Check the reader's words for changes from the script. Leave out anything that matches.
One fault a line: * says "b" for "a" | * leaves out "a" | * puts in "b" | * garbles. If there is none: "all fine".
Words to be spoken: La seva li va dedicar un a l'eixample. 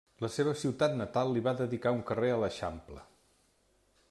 * puts in "ciutat natal"
* puts in "carrer"